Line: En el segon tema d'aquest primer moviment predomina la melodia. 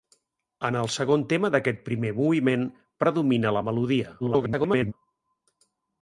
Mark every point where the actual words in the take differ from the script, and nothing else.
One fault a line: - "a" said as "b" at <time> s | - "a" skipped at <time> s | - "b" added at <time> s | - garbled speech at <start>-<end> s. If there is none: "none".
- garbled speech at 4.2-4.9 s